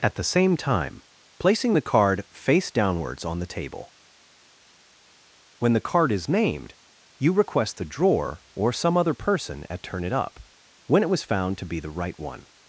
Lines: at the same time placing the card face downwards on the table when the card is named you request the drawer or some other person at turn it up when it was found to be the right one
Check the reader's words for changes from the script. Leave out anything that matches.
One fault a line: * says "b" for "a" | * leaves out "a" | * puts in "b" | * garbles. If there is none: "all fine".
all fine